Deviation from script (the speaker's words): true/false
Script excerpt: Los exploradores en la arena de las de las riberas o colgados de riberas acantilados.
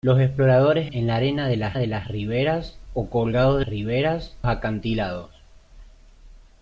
false